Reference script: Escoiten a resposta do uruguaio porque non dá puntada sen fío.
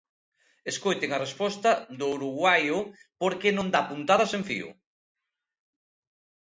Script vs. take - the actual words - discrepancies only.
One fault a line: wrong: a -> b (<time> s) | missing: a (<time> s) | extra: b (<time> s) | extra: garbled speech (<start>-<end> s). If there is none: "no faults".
no faults